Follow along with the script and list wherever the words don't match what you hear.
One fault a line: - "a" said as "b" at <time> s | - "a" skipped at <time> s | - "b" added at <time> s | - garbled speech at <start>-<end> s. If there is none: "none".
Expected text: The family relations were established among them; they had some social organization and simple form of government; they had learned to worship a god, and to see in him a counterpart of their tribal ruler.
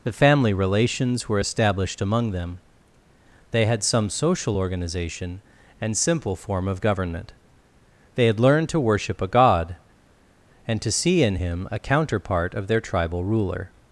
none